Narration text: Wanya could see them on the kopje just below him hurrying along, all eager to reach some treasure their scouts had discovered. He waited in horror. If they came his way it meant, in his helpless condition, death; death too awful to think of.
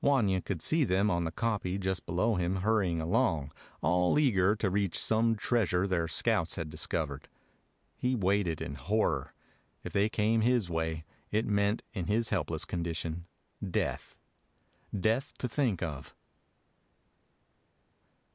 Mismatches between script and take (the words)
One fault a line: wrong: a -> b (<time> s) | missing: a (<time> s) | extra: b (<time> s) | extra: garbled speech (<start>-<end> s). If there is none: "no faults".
missing: too awful (15.3 s)